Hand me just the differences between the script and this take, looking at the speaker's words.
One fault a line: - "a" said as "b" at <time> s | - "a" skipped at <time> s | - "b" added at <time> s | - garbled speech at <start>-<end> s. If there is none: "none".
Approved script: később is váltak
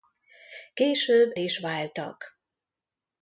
none